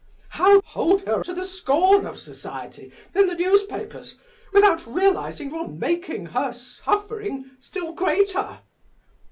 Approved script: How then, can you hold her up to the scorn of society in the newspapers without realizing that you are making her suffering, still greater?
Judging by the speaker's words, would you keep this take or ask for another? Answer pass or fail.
fail